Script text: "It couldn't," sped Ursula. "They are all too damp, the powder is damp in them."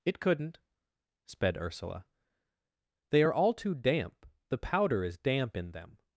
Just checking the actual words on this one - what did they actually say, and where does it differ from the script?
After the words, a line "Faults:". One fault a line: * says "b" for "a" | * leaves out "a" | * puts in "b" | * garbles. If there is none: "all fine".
"It couldn't," sped Ursula. "They are all too damp, the powder is damp in them."
Faults:
all fine